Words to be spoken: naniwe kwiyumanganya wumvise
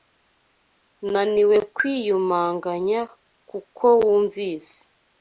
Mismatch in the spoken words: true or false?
true